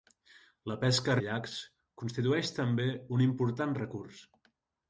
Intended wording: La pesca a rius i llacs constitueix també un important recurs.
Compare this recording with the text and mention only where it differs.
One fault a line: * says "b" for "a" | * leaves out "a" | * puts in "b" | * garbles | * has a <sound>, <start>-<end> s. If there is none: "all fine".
* leaves out "rius"